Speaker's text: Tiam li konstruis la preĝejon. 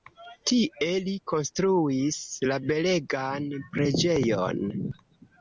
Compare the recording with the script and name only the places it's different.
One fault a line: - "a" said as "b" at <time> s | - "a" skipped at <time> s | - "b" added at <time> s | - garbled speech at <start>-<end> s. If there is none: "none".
- "Tiam" said as "Tie" at 0.5 s
- "belegan" added at 2.7 s